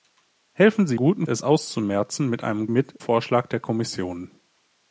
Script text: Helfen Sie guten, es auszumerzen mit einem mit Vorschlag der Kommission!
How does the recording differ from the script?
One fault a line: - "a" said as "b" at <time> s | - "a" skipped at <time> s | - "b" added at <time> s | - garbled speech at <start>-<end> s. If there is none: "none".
none